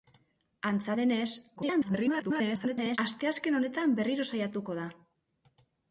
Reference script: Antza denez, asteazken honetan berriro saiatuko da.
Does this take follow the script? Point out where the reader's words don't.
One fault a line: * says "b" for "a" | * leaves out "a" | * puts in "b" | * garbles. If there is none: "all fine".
* garbles